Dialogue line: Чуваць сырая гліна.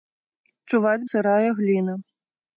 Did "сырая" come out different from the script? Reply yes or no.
no